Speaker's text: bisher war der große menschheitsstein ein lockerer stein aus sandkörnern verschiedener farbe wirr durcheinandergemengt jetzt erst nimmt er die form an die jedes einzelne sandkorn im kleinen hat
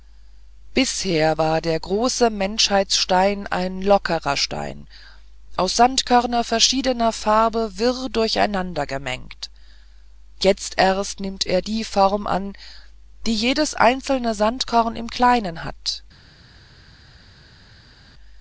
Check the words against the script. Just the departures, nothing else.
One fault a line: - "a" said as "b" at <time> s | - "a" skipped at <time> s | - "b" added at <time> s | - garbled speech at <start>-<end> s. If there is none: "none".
none